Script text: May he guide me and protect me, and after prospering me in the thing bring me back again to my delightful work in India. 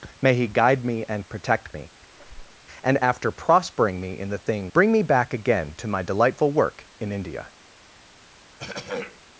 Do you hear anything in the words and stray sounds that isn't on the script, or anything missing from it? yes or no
yes